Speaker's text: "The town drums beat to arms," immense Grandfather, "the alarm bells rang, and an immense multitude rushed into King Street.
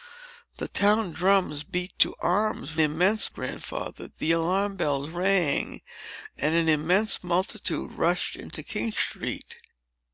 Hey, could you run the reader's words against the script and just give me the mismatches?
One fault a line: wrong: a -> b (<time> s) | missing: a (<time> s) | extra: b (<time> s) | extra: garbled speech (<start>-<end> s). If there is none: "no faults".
no faults